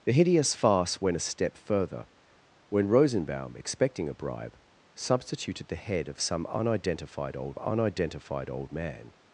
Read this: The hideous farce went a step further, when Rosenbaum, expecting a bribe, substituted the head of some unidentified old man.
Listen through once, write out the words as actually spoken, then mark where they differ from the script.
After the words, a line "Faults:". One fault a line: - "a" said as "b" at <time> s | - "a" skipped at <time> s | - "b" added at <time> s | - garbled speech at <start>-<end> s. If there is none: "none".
The hideous farce went a step further, when Rosenbaum, expecting a bribe, substituted the head of some unidentified old unidentified old man.
Faults:
- "unidentified old" added at 7.6 s